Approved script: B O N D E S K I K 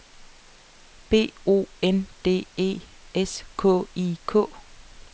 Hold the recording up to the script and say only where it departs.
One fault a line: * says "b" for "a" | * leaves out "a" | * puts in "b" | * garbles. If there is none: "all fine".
all fine